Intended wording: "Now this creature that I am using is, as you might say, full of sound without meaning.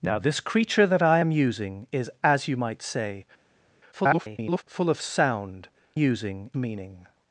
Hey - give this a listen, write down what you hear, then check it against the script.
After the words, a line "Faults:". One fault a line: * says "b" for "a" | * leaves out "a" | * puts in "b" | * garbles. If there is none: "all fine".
"Now this creature that I am using is, as you might say, [garbled] full of sound using meaning.
Faults:
* garbles
* says "using" for "without"